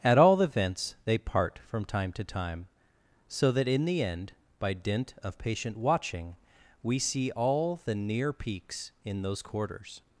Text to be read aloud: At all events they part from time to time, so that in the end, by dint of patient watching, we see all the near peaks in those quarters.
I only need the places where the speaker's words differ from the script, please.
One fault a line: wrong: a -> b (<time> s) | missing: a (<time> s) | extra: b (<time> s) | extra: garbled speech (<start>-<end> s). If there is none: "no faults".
no faults